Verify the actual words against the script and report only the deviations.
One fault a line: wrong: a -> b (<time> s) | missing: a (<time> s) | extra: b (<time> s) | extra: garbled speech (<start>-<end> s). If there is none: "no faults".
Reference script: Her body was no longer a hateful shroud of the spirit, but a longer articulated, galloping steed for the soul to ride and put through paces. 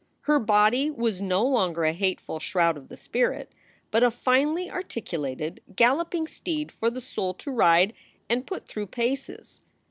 wrong: longer -> finely (4.1 s)